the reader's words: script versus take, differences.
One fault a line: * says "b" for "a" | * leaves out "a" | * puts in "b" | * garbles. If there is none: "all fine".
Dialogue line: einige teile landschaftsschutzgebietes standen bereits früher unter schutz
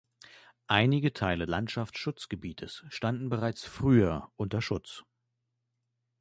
all fine